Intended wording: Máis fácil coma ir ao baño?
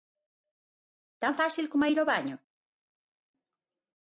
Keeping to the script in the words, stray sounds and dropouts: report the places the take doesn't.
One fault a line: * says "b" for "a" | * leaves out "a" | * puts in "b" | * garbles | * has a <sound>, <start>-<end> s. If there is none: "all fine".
* says "Tan" for "Máis"